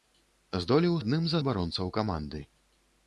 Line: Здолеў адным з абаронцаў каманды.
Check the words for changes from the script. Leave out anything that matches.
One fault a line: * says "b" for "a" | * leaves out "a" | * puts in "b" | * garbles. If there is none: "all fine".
all fine